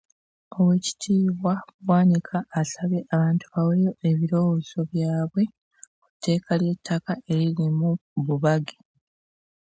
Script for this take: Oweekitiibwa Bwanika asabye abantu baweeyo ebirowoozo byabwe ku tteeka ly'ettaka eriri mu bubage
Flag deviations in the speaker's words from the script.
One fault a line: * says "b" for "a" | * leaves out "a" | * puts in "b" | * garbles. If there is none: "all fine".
all fine